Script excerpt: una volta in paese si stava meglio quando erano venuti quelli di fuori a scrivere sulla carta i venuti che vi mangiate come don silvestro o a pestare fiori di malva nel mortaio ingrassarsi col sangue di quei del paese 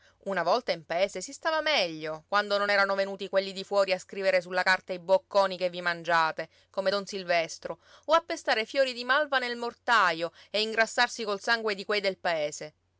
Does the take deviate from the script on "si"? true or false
false